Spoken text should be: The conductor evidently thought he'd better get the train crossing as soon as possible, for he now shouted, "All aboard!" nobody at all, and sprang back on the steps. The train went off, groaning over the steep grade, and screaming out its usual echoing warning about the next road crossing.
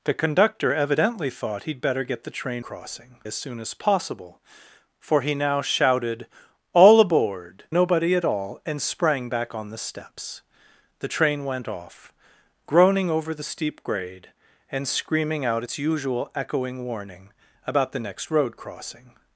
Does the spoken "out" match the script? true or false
true